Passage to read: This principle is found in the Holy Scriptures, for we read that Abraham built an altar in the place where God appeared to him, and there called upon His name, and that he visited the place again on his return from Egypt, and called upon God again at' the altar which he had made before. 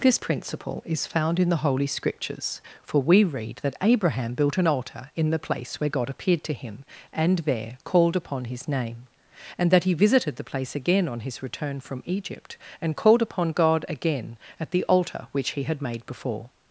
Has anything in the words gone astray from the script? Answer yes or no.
no